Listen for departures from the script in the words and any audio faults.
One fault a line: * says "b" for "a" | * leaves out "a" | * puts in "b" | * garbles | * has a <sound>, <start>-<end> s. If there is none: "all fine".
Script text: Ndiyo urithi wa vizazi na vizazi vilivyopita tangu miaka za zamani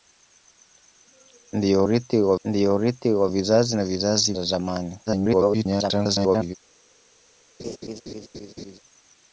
* puts in "ndiyo urithi wa"
* leaves out "vilivyopita tangu miaka"
* garbles
* has a laugh, 7.6-8.8 s